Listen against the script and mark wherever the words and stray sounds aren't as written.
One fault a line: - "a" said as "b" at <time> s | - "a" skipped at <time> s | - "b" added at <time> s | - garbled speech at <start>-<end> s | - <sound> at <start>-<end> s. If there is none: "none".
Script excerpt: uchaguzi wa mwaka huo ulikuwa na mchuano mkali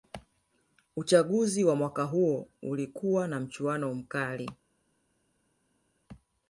none